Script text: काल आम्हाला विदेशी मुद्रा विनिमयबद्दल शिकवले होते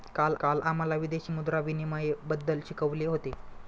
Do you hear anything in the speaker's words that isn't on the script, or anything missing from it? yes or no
yes